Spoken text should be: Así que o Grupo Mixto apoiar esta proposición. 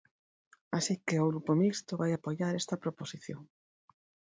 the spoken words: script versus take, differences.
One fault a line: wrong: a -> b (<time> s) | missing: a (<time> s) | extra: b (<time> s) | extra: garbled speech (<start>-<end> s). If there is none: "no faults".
extra: vai (2.0 s)